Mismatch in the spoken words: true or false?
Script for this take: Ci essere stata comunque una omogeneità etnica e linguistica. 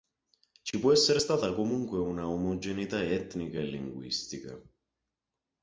true